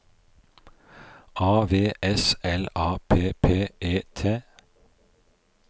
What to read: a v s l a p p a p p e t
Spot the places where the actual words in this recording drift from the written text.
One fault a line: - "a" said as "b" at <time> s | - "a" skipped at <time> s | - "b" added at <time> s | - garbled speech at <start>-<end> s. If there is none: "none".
- "a p p" skipped at 3.7 s